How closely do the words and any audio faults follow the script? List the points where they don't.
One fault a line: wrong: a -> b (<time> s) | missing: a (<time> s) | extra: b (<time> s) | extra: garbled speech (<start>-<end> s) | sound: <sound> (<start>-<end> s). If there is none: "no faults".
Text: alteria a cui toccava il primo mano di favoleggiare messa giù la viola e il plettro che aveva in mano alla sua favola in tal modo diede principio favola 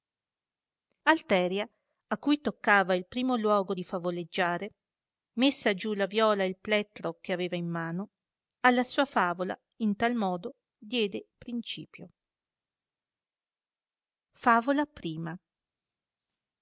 wrong: mano -> luogo (3.4 s)